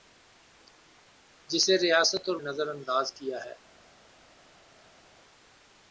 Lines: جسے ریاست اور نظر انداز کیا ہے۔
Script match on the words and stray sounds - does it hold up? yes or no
yes